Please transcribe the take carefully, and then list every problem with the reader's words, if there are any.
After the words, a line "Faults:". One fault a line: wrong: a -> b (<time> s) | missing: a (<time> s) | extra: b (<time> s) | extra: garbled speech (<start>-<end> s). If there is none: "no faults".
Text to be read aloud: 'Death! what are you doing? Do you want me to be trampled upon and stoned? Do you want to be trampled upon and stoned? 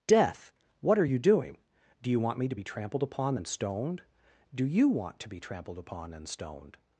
'Death! what are you doing? Do you want me to be trampled upon and stoned? Do you want to be trampled upon and stoned?
Faults:
no faults